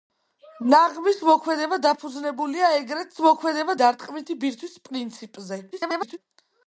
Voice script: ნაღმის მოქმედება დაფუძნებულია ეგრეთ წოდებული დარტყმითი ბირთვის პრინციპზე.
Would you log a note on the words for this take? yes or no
yes